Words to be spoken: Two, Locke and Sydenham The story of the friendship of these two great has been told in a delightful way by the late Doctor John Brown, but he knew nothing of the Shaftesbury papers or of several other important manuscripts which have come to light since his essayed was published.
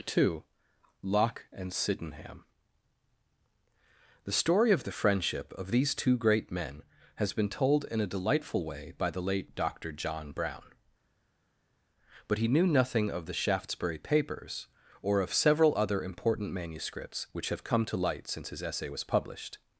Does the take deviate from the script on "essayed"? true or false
true